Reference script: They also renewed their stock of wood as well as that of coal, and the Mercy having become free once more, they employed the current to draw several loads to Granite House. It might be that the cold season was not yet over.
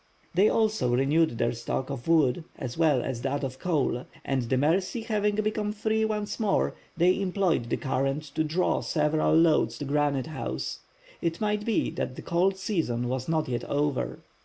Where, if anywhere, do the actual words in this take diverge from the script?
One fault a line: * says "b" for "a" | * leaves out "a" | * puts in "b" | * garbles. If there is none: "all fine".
all fine